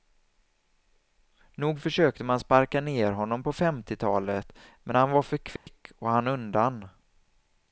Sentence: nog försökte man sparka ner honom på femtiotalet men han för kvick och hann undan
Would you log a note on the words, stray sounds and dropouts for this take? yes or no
yes